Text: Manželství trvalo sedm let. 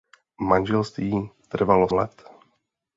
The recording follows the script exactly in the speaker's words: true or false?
false